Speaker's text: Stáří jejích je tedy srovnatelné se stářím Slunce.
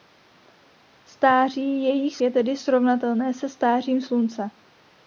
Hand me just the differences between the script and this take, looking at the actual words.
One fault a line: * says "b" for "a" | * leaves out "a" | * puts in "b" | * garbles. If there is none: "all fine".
all fine